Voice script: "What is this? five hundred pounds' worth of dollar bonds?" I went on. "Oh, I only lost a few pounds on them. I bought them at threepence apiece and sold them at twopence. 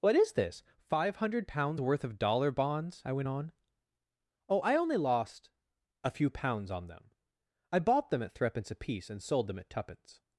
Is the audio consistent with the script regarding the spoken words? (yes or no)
yes